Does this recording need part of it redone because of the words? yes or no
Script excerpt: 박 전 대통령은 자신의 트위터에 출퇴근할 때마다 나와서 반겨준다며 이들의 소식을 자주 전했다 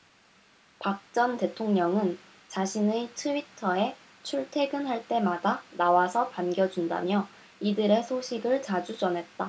no